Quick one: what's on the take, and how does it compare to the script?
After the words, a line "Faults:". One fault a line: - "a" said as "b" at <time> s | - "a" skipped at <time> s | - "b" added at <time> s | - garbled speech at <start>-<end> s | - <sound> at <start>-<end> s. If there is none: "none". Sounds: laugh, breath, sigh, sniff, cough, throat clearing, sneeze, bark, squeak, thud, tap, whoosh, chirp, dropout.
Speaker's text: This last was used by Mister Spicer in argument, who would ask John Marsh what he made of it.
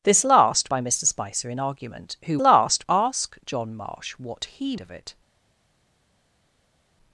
This last by Mister Spicer in argument, who last ask John Marsh what he of it.
Faults:
- "was used" skipped at 0.7 s
- "would" said as "last" at 2.4 s
- "made" skipped at 4.8 s